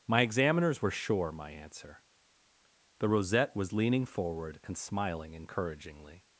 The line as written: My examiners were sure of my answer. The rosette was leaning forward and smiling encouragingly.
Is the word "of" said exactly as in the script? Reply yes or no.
no